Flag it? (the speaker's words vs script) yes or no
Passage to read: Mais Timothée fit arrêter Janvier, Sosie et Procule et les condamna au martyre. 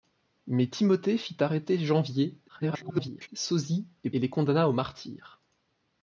yes